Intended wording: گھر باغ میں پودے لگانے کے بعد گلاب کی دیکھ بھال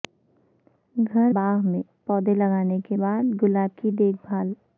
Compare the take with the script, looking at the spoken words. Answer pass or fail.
pass